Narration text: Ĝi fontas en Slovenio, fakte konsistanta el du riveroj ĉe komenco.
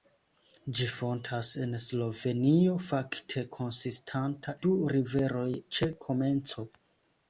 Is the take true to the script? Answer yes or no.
no